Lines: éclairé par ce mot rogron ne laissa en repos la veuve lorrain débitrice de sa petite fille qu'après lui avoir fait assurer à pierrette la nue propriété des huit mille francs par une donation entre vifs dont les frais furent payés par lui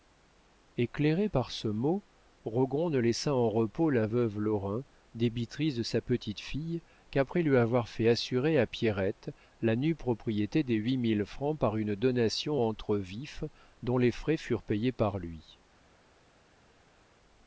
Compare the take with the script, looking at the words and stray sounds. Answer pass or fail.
pass